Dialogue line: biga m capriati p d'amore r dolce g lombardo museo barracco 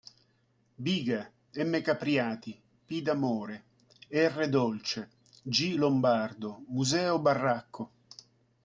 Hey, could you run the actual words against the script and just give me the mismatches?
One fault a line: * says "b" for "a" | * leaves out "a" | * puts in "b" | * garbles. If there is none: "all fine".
all fine